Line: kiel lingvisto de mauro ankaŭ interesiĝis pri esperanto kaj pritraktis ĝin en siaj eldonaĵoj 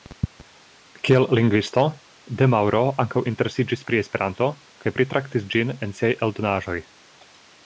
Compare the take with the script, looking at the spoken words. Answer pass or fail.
pass